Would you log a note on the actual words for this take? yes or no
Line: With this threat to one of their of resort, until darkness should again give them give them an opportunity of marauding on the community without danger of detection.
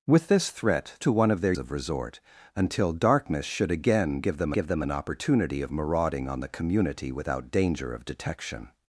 no